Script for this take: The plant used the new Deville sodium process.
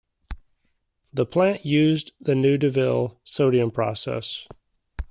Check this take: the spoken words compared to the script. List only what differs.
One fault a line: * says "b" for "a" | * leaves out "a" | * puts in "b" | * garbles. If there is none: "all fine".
all fine